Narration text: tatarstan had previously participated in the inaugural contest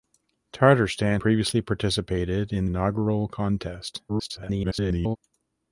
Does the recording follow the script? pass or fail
fail